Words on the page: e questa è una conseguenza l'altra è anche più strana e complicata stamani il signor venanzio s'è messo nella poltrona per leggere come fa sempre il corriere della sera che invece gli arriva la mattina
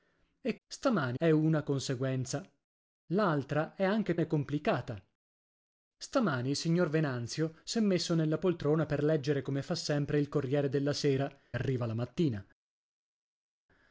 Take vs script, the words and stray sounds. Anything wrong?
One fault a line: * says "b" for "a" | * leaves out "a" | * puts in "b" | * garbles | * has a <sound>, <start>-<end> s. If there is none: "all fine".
* says "stamani" for "questa"
* leaves out "più strana"
* leaves out "che invece gli"